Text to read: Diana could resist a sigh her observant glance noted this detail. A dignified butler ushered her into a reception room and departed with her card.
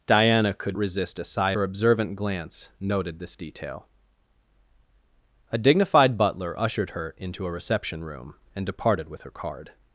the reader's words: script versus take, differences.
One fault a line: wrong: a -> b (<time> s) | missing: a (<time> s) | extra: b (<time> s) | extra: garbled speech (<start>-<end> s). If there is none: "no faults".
no faults